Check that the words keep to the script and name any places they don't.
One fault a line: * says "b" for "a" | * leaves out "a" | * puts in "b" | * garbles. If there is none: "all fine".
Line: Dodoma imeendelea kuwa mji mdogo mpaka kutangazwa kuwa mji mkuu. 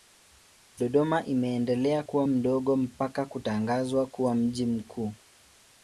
* leaves out "mji"